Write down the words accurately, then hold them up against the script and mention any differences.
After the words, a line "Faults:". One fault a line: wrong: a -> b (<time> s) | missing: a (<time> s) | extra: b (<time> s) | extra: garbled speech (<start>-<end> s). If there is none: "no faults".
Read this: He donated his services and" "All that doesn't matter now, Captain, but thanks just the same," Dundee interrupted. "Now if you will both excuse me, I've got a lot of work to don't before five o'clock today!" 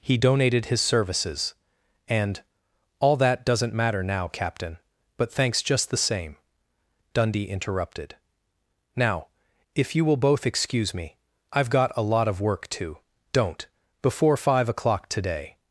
He donated his services and" "All that doesn't matter now, Captain, but thanks just the same," Dundee interrupted. "Now if you will both excuse me, I've got a lot of work to don't before five o'clock today!"
Faults:
no faults